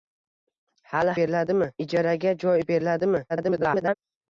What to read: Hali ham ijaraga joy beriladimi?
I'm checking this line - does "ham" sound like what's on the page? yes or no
no